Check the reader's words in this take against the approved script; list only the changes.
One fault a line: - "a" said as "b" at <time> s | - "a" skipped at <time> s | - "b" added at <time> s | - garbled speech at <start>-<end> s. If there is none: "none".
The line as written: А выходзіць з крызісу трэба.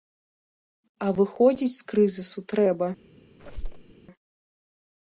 none